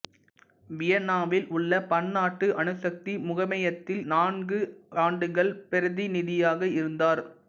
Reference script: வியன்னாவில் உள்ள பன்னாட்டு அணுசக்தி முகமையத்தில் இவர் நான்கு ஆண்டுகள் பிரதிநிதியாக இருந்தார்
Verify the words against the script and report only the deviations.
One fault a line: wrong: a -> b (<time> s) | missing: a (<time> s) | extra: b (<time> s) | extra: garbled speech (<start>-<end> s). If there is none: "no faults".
missing: இவர் (4.0 s)